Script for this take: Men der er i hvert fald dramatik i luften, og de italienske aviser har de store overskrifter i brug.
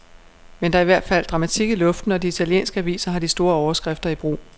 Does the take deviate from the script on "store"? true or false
false